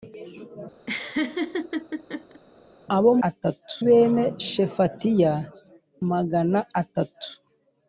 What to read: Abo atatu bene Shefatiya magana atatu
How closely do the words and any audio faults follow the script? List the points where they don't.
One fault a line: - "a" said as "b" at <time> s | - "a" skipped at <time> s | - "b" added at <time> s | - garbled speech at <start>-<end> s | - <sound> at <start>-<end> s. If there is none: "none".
- laugh at 0.9-2.4 s